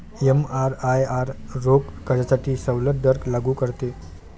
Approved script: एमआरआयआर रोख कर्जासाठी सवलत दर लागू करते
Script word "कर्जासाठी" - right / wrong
right